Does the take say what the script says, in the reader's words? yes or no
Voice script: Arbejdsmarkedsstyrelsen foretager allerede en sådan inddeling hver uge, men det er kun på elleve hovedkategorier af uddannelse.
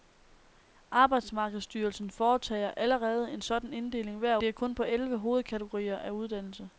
no